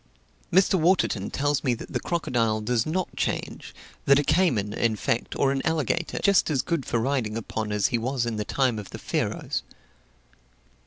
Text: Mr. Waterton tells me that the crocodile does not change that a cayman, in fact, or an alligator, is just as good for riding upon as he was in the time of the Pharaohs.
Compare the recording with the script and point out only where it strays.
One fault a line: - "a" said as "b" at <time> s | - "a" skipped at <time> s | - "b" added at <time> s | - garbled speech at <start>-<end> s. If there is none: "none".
- "is" skipped at 6.2 s